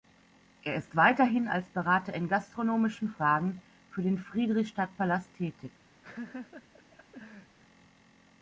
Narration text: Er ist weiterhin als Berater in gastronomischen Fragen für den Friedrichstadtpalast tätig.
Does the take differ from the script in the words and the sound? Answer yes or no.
yes